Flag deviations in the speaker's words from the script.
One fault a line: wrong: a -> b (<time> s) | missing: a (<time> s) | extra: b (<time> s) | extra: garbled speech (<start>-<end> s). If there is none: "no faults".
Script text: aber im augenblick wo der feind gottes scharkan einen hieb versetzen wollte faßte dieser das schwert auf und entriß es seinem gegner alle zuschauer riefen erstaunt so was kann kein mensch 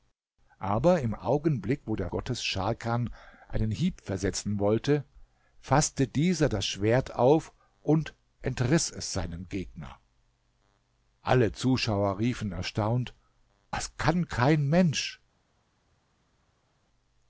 missing: feind (2.1 s)
missing: so (13.1 s)